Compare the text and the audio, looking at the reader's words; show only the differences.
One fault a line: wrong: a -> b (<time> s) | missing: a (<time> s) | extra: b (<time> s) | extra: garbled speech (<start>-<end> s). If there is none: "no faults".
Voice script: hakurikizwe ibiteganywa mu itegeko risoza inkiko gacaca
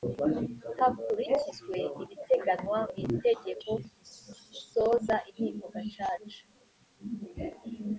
no faults